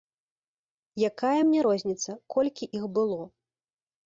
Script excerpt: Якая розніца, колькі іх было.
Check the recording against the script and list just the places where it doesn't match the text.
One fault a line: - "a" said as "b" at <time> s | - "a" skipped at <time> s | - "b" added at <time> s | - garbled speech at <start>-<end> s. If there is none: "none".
- "мне" added at 1.5 s